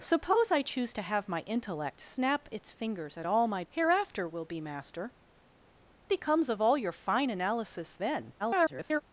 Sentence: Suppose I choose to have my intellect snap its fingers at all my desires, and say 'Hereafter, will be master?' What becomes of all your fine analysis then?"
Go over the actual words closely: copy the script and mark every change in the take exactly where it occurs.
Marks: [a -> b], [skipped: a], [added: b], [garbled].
Suppose I choose to have my intellect snap its fingers at all my [skipped: desires, and say] 'Hereafter, will be master?' [skipped: What] becomes of all your fine analysis then?" [garbled]